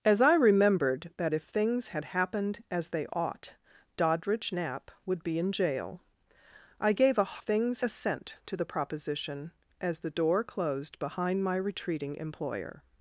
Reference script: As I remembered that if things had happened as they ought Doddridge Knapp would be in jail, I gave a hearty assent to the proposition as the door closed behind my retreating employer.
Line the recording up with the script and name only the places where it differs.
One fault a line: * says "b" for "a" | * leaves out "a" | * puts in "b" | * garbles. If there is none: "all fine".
* says "things" for "hearty"